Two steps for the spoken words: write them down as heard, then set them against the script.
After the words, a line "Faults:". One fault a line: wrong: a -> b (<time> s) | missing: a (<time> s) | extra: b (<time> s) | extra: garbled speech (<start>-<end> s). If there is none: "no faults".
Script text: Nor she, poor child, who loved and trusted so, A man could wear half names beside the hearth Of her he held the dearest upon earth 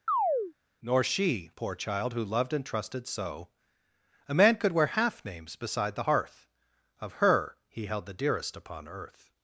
Nor she, poor child, who loved and trusted so, A man could wear half names beside the hearth Of her he held the dearest upon earth
Faults:
no faults